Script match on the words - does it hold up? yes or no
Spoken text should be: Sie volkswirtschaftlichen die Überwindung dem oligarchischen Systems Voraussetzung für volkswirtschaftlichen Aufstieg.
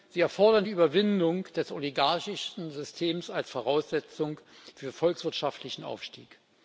no